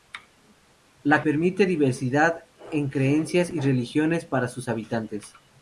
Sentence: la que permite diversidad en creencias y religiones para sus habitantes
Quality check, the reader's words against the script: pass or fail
fail